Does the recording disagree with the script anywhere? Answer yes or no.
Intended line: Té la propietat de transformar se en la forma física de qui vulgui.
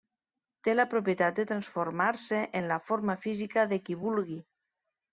no